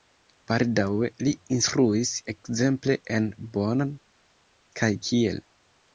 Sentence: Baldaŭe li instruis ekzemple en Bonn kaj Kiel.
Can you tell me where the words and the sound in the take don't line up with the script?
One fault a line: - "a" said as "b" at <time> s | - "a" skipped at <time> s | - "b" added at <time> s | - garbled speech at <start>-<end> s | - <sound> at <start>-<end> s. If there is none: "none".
none